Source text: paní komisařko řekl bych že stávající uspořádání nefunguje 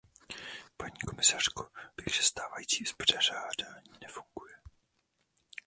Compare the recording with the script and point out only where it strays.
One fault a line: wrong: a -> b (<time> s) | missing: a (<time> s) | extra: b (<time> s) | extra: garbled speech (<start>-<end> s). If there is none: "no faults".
missing: řekl (1.7 s)